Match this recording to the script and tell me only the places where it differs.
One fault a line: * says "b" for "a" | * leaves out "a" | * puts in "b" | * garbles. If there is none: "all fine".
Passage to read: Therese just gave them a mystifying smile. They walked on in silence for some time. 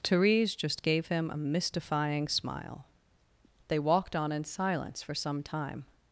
* says "him" for "them"